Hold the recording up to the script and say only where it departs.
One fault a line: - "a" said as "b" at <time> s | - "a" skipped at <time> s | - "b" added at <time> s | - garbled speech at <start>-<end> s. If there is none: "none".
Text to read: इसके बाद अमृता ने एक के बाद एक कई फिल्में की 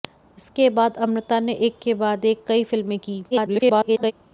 - garbled speech at 3.3-4.1 s